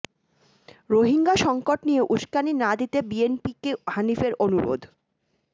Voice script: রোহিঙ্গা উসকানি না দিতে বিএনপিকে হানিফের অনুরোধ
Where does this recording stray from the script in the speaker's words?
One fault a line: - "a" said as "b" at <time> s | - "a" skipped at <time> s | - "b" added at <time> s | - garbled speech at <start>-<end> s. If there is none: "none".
- "সংকট নিয়ে" added at 1.4 s